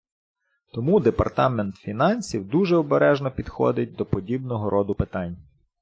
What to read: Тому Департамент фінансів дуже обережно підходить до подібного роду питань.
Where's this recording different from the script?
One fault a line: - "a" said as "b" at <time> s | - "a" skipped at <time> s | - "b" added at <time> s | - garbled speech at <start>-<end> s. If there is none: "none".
none